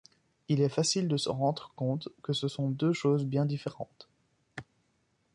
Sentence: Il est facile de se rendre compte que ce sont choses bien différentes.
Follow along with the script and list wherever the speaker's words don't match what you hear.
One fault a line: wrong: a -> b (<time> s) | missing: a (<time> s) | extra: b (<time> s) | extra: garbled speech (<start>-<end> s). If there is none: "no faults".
extra: deux (2.7 s)